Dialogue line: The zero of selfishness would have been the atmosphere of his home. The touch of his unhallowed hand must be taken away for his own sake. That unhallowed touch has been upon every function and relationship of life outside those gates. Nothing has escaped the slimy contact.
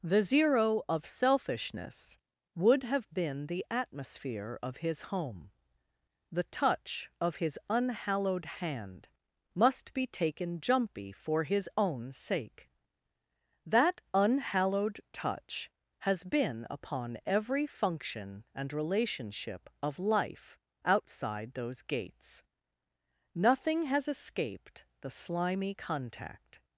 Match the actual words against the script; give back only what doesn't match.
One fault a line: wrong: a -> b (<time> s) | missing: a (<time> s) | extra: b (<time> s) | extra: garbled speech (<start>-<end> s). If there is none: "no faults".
wrong: away -> jumpy (10.6 s)